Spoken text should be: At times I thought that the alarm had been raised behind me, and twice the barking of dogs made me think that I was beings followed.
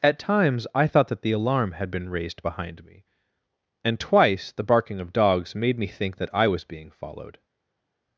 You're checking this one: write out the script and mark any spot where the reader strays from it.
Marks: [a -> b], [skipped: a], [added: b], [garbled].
At times I thought that the alarm had been raised behind me, and twice the barking of dogs made me think that I was [beings -> being] followed.